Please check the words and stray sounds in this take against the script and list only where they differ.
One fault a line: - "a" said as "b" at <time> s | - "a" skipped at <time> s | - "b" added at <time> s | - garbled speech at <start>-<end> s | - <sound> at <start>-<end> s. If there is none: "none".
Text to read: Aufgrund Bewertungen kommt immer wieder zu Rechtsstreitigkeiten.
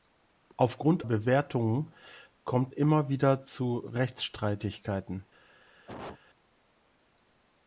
- cough at 5.9-6.2 s